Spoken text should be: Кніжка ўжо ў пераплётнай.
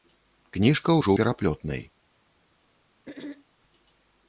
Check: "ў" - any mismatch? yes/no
yes